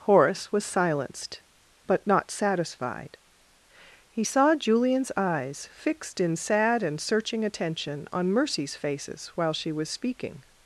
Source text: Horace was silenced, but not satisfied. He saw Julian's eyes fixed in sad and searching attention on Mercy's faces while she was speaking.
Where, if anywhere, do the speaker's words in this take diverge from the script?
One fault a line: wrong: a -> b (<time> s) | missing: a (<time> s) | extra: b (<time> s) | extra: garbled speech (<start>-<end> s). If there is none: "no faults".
no faults